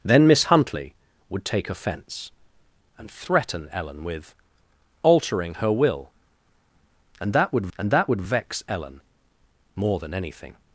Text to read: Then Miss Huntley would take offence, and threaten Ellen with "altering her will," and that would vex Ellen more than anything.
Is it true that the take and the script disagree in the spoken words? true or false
true